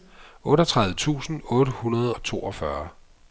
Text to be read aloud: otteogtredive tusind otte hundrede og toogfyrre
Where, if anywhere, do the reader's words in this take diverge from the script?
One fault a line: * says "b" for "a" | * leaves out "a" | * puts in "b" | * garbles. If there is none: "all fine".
all fine